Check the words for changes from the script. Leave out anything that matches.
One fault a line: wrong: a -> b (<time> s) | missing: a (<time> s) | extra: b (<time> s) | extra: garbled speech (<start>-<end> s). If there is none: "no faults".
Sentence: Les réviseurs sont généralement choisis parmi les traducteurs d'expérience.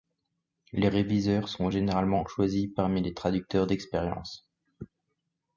no faults